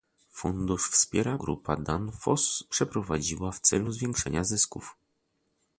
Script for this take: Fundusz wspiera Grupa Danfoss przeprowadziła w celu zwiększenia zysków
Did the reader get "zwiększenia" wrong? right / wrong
right